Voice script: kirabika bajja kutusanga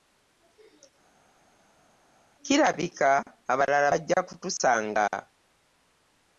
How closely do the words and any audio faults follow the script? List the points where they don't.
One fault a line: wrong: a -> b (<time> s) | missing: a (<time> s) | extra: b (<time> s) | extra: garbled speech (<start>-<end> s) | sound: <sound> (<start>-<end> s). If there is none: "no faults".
extra: abalala (3.5 s)